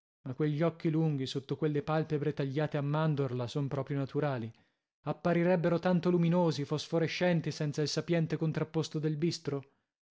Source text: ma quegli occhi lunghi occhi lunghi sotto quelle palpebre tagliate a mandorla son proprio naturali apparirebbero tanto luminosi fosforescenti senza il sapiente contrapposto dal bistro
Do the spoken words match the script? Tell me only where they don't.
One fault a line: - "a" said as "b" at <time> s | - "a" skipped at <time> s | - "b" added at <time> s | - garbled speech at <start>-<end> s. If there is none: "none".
- "occhi lunghi" skipped at 1.3 s
- "dal" said as "del" at 9.0 s